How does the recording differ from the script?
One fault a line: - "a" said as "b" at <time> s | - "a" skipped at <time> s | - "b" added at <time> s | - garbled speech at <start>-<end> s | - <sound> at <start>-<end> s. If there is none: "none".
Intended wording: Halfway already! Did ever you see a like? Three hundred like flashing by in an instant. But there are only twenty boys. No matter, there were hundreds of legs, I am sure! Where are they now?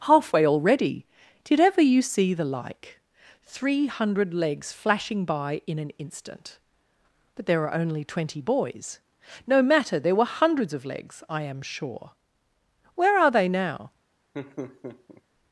- "a" said as "the" at 2.3 s
- "like" said as "legs" at 4.3 s
- laugh at 14.3-15.2 s